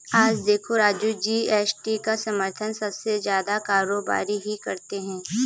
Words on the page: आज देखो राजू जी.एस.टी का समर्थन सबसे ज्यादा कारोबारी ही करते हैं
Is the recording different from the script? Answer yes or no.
no